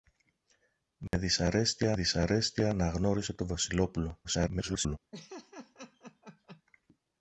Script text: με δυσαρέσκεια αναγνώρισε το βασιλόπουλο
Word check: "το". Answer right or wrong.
right